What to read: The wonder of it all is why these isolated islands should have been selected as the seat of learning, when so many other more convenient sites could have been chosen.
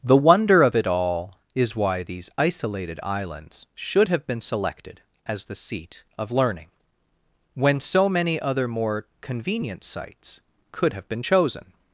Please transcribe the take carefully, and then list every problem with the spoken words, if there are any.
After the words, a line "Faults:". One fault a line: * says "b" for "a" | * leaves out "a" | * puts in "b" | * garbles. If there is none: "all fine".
The wonder of it all is why these isolated islands should have been selected as the seat of learning, when so many other more convenient sites could have been chosen.
Faults:
all fine